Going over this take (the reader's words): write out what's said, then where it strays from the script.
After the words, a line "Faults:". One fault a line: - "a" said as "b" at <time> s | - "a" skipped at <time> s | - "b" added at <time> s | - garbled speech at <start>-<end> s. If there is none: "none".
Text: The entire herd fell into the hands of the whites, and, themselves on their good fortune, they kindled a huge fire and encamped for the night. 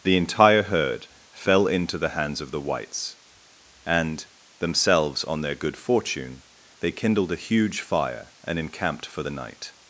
The entire herd fell into the hands of the whites, and, themselves on their good fortune, they kindled a huge fire and encamped for the night.
Faults:
none